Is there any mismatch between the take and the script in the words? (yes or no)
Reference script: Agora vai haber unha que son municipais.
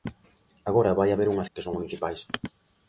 no